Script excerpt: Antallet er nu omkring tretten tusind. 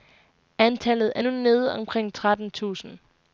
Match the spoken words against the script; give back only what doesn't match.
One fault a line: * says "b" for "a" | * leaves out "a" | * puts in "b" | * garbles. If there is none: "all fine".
* puts in "nede"